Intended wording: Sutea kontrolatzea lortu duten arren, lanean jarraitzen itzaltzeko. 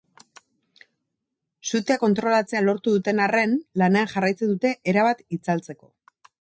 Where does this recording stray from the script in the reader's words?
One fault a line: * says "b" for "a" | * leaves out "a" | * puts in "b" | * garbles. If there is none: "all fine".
* puts in "dute erabat"